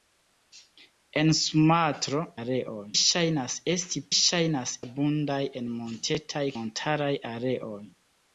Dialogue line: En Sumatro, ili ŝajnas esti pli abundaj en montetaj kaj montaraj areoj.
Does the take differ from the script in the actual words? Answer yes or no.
yes